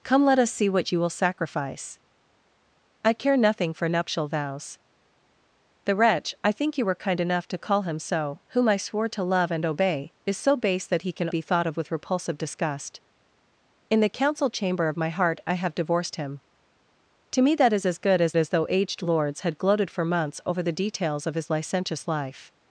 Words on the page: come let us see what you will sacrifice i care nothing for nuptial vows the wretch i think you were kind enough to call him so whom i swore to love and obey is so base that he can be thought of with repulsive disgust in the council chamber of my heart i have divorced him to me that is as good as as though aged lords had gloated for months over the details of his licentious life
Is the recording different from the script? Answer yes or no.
no